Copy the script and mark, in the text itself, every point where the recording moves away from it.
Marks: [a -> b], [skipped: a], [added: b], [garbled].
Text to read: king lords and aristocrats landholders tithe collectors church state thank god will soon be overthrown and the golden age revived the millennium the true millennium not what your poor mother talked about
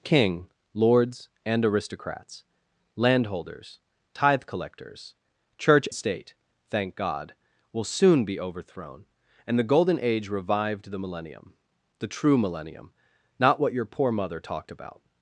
king lords and aristocrats landholders tithe collectors church state thank god will soon be overthrown and the golden age revived the millennium the true millennium not what your poor mother talked about